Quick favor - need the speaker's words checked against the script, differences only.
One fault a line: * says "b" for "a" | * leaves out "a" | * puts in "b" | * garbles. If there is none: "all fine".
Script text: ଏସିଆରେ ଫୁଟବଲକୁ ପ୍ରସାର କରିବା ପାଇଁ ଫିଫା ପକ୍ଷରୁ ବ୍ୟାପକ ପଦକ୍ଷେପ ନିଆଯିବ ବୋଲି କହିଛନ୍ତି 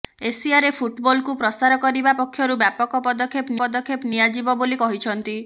* leaves out "ପାଇଁ ଫିଫା"
* puts in "ପଦକ୍ଷେପ"